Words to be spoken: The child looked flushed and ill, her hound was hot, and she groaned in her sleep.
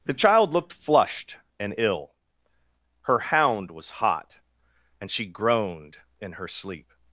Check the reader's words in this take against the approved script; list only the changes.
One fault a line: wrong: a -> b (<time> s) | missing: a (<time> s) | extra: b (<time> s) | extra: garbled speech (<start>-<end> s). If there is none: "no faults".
no faults